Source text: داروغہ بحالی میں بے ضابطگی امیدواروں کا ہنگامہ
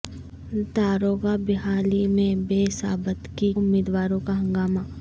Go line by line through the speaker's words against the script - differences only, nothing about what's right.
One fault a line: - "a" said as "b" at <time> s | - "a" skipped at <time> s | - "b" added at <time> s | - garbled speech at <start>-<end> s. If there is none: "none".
none